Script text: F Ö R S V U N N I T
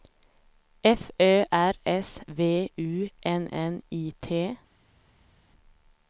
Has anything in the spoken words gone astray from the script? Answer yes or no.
no